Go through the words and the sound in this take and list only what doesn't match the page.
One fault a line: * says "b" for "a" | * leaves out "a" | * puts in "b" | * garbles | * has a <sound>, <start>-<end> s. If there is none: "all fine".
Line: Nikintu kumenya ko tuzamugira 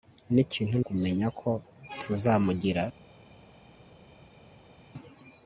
all fine